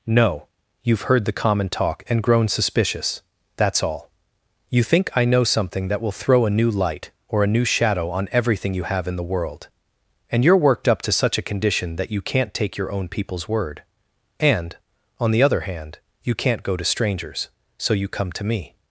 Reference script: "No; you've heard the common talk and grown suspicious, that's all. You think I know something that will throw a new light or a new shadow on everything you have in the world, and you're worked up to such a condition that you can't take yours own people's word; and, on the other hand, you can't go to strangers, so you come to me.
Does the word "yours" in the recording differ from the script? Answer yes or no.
yes